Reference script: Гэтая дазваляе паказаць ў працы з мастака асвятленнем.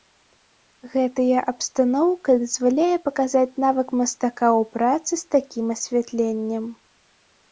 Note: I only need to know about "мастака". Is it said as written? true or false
false